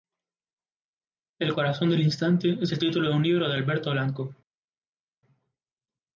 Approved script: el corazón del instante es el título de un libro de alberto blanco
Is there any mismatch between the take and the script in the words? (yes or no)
no